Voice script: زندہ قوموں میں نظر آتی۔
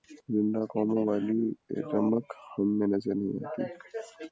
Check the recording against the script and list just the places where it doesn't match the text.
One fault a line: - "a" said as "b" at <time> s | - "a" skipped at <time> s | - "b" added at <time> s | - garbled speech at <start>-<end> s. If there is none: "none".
- "والی رمق ہم" added at 1.1 s
- "نہیں" added at 3.2 s